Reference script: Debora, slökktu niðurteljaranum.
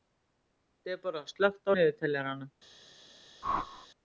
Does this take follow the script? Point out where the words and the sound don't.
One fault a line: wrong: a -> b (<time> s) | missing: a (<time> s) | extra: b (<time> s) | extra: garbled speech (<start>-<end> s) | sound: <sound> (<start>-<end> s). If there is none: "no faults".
sound: whoosh (3.4-3.9 s)